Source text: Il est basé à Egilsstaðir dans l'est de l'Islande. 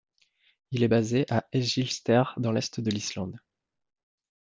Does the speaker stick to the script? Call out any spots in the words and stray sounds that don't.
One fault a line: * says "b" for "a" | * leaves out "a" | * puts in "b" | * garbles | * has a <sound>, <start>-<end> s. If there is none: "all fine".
all fine